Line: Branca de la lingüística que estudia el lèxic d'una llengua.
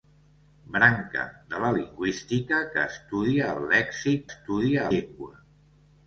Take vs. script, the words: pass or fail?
fail